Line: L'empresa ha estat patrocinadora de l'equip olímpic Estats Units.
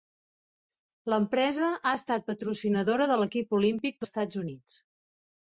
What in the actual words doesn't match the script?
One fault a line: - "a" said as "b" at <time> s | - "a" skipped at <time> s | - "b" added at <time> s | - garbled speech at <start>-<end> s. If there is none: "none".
none